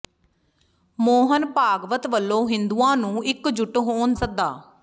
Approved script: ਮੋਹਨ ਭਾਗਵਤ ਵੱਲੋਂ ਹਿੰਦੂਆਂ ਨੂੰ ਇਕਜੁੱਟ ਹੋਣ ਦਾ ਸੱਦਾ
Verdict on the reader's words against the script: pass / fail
fail